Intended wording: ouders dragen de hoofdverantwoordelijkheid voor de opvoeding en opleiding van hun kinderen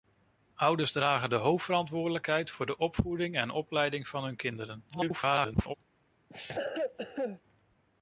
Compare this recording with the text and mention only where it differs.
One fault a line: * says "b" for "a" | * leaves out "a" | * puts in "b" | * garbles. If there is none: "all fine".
* garbles